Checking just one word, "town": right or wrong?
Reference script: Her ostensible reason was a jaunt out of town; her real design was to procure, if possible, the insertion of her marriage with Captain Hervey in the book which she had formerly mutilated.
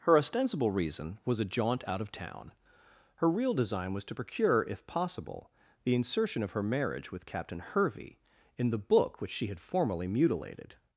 right